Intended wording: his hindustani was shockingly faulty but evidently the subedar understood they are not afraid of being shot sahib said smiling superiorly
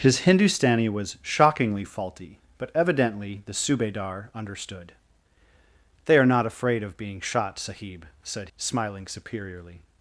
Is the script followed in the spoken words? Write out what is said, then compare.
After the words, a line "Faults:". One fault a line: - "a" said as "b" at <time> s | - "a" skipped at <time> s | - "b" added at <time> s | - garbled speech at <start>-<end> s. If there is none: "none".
his hindustani was shockingly faulty but evidently the subedar understood they are not afraid of being shot sahib said smiling superiorly
Faults:
none